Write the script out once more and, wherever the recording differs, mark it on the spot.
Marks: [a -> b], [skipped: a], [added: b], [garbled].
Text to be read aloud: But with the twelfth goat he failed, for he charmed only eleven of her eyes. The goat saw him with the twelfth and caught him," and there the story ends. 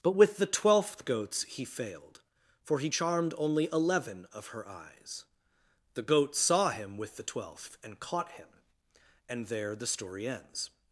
But with the twelfth [goat -> goats] he failed, for he charmed only eleven of her eyes. The goat saw him with the twelfth and caught him," and there the story ends.